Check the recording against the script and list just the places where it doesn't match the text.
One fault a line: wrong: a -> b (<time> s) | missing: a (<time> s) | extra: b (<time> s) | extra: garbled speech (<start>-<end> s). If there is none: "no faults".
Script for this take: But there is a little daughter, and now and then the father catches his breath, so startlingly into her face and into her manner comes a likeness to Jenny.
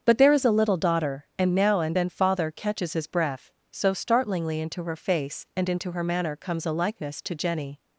missing: the (2.1 s)